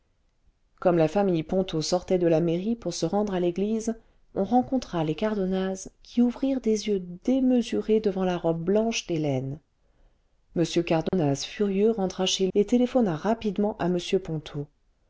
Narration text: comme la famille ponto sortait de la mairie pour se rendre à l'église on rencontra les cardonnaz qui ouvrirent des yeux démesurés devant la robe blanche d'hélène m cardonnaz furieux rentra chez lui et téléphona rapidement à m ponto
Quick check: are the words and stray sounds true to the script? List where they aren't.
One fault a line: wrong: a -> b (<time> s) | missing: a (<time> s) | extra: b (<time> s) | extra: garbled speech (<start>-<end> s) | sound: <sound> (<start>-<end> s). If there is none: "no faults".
sound: dropout (11.1-11.1 s)
missing: lui (12.5 s)